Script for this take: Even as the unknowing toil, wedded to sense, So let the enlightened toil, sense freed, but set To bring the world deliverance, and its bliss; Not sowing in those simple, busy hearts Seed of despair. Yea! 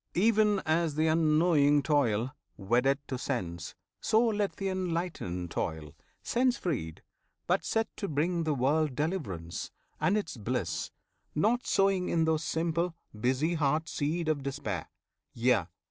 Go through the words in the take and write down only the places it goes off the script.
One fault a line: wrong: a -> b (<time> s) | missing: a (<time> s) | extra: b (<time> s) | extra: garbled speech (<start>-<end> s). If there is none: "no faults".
no faults